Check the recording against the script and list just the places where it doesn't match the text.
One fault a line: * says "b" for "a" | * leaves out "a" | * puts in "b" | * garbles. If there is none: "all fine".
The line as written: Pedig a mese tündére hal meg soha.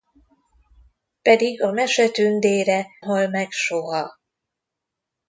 all fine